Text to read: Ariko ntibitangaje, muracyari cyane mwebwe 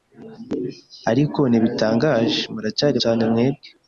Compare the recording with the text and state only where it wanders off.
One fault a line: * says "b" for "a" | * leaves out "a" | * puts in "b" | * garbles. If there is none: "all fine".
all fine